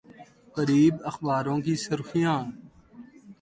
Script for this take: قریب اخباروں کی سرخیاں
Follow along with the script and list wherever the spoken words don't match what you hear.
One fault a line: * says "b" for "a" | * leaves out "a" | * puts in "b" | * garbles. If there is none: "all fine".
all fine